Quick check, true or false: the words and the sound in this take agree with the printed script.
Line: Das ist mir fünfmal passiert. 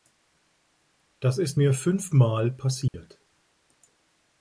false